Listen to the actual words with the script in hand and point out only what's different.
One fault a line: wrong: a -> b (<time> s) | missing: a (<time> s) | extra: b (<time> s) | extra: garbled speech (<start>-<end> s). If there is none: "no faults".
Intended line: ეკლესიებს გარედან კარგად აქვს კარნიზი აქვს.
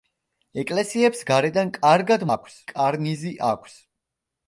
no faults